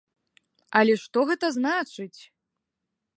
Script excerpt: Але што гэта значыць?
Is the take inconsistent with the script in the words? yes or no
no